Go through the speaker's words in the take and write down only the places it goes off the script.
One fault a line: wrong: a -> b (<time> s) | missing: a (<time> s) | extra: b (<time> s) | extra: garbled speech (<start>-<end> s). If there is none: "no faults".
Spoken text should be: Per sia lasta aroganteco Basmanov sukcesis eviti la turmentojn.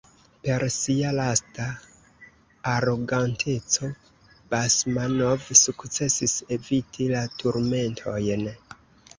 no faults